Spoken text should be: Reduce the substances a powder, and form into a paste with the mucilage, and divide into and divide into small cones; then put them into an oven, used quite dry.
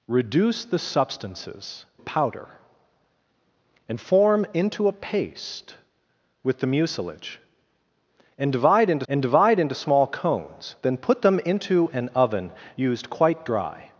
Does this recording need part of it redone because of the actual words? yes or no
no